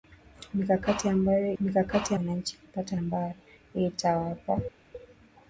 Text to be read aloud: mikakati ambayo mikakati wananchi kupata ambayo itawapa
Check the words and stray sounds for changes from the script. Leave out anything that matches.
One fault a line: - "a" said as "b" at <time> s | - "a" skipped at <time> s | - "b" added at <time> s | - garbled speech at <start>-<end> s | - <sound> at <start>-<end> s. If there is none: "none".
none